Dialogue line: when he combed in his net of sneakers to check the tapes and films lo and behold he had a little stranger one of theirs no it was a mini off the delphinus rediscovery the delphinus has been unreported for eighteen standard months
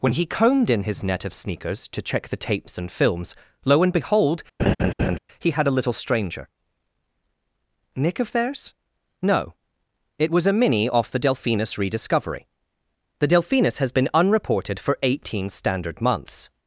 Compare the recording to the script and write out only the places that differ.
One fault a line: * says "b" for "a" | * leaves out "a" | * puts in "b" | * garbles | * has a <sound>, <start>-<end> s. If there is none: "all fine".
* has a laugh, 4.6-5.2 s
* says "nick" for "one"